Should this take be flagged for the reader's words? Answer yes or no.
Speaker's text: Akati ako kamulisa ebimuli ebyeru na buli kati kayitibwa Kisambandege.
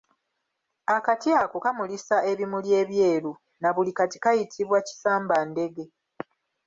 no